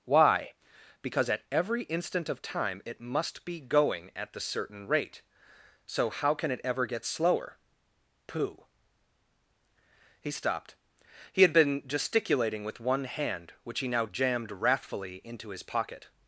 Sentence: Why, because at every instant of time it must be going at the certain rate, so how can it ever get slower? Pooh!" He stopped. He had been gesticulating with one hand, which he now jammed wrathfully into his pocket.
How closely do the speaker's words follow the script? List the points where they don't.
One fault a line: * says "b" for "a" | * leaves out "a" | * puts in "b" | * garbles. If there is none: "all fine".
all fine